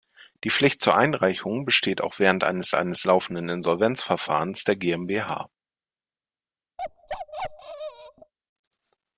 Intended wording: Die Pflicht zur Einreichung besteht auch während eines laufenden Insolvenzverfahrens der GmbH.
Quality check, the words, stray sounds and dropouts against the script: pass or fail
fail